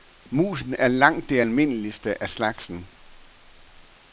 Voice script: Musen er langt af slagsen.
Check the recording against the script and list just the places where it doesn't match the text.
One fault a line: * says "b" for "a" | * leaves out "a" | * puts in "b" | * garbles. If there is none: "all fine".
* puts in "det almindeligste"